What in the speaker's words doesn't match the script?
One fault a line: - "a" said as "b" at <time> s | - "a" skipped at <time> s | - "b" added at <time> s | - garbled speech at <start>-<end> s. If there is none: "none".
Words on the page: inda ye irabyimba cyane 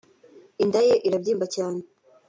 none